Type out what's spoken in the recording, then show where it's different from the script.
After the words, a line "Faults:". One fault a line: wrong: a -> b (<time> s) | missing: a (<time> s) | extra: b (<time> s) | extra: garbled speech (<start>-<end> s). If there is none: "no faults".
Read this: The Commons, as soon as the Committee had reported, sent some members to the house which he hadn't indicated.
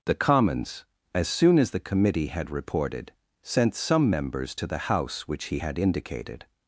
The Commons, as soon as the Committee had reported, sent some members to the house which he had indicated.
Faults:
wrong: hadn't -> had (5.6 s)